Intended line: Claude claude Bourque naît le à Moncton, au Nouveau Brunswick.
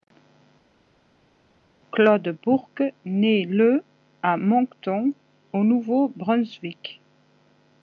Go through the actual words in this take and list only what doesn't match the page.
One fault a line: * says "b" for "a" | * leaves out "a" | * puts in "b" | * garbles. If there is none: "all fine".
* leaves out "claude"